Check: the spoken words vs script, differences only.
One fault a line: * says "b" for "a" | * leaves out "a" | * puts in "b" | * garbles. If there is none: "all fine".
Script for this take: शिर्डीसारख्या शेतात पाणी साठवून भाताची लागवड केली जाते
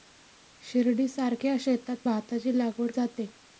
* leaves out "पाणी साठवून"
* leaves out "केली"